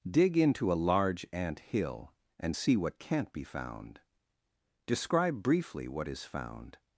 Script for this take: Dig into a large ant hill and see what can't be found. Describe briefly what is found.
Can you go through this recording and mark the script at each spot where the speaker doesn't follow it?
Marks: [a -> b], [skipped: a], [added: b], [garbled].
Dig into a large ant hill and see what can't be found. Describe briefly what is found.